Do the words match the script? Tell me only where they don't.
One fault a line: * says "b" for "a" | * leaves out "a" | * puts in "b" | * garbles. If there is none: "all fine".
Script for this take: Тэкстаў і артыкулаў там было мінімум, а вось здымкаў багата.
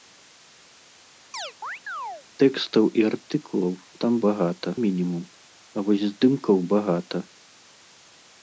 * says "багата" for "было"